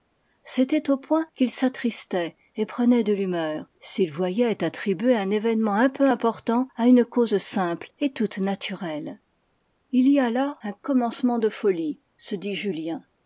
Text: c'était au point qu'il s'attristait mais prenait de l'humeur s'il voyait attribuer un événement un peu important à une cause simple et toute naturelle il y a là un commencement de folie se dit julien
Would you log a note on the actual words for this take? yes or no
yes